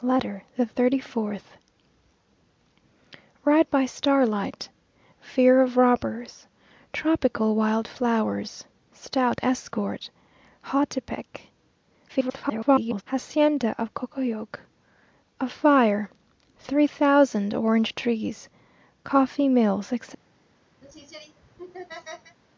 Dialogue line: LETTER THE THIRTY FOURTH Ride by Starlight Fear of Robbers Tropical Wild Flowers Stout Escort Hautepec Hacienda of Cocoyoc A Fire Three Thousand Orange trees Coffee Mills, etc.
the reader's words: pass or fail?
fail